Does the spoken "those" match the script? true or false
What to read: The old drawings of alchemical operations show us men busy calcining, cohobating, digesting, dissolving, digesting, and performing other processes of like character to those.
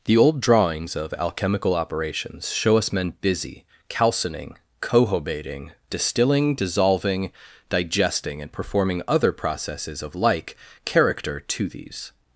false